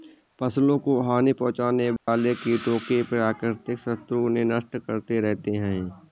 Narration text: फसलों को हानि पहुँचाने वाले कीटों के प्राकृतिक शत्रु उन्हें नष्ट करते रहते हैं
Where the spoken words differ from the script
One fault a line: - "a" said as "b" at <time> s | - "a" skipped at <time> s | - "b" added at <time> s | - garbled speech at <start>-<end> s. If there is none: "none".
none